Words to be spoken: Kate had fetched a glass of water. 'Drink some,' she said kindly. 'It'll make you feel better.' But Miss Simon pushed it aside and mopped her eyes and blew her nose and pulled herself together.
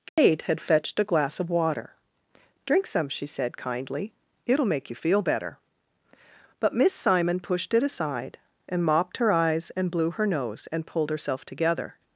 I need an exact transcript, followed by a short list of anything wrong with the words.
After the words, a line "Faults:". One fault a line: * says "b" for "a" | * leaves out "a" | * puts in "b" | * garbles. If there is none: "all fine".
Kate had fetched a glass of water. 'Drink some,' she said kindly. 'It'll make you feel better.' But Miss Simon pushed it aside and mopped her eyes and blew her nose and pulled herself together.
Faults:
all fine